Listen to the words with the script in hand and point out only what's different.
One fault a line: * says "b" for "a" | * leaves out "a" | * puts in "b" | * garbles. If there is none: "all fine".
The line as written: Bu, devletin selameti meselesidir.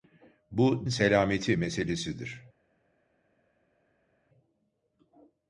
* leaves out "devletin"